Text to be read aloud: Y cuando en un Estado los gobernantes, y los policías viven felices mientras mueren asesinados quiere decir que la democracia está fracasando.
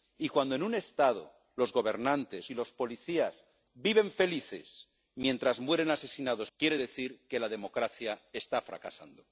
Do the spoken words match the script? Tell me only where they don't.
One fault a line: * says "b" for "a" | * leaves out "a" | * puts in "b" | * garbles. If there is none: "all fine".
all fine